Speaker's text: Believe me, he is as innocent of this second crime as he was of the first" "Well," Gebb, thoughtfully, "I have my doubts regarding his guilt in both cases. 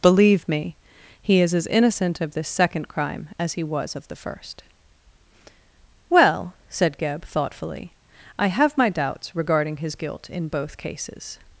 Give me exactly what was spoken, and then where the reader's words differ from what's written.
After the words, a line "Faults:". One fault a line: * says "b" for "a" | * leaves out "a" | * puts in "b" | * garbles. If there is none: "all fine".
Believe me, he is as innocent of this second crime as he was of the first" "Well," said Gebb, thoughtfully, "I have my doubts regarding his guilt in both cases.
Faults:
* puts in "said"